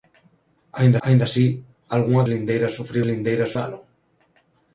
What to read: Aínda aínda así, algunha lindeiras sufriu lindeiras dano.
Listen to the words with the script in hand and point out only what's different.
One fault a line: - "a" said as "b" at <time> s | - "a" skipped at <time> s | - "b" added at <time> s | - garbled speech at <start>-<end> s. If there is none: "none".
none